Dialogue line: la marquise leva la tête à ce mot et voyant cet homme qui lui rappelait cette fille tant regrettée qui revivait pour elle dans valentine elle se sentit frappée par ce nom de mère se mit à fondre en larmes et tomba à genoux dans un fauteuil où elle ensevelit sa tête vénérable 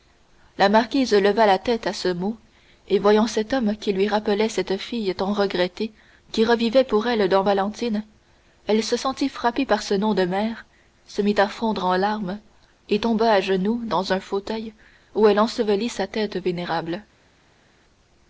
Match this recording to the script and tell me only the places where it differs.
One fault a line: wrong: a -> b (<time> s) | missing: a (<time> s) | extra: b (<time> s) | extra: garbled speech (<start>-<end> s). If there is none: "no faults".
no faults